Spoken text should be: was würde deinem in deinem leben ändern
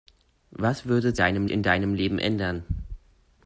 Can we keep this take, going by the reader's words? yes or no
yes